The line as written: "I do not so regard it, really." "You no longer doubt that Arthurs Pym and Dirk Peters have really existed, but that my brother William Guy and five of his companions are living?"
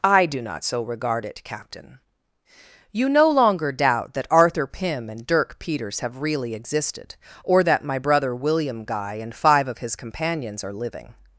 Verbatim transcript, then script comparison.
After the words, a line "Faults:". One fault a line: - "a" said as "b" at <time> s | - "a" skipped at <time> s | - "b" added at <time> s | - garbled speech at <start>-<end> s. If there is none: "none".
"I do not so regard it, captain." "You no longer doubt that Arthur Pym and Dirk Peters have really existed, or that my brother William Guy and five of his companions are living?"
Faults:
- "really" said as "captain" at 1.4 s
- "Arthurs" said as "Arthur" at 4.3 s
- "but" said as "or" at 7.4 s